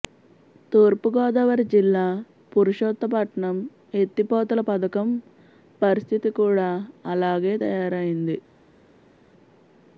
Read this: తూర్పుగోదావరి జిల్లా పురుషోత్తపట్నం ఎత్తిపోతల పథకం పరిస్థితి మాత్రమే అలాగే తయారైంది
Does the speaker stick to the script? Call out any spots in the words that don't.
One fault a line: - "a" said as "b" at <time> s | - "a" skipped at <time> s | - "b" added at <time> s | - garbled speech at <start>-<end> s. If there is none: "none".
- "మాత్రమే" said as "కూడా" at 6.4 s